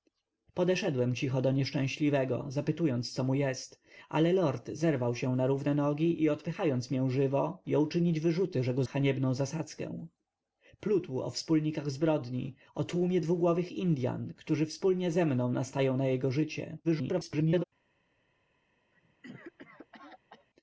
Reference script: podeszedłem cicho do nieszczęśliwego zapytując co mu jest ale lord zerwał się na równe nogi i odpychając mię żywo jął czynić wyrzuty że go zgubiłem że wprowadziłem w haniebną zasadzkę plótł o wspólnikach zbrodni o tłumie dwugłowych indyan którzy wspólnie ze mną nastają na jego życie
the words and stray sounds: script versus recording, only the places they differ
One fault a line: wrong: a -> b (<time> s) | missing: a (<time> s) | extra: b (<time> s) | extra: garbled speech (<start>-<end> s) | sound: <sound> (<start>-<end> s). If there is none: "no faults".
missing: zgubiłem że wprowadziłem (8.8 s)
extra: garbled speech (16.8-17.6 s)
sound: cough (18.9-20.5 s)